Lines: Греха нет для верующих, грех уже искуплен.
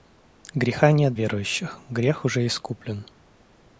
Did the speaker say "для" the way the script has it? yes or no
no